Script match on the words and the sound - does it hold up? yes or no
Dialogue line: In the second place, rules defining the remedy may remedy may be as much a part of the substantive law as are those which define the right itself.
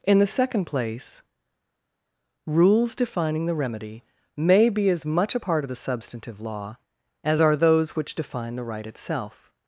no